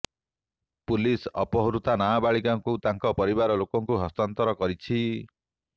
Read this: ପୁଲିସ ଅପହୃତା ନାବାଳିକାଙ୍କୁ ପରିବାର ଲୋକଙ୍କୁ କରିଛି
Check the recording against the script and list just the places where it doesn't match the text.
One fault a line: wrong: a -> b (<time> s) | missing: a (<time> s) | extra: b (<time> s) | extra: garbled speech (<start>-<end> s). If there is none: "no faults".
extra: ତାଙ୍କ (2.9 s)
extra: ହସ୍ତାନ୍ତର (4.0 s)